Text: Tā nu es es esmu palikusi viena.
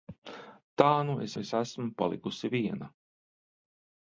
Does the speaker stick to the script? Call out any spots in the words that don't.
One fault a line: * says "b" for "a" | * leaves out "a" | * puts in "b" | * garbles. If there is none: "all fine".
all fine